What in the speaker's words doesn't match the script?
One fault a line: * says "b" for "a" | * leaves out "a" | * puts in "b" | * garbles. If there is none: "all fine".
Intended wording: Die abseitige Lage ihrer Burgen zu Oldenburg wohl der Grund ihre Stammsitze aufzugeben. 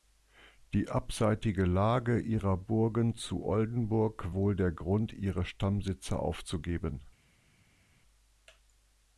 all fine